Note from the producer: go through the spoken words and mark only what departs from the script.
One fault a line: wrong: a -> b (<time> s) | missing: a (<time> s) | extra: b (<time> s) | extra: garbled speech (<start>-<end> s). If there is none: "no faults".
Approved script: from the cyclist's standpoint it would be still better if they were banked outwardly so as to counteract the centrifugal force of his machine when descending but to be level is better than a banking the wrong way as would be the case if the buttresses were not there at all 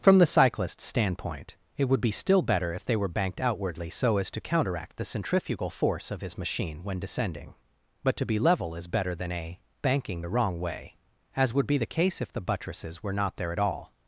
no faults